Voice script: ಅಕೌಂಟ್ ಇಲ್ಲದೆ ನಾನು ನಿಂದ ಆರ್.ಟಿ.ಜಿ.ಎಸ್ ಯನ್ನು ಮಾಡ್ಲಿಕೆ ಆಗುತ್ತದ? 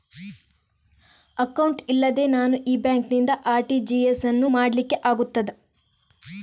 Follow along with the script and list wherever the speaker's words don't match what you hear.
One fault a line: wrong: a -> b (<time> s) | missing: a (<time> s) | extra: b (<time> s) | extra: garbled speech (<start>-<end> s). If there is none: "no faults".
extra: ಈ ಬ್ಯಾಂಕ್ (2.6 s)